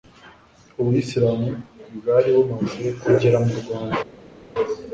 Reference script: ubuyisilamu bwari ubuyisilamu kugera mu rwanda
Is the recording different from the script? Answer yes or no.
yes